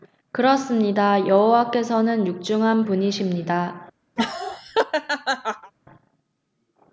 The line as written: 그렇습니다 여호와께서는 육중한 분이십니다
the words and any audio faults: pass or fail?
fail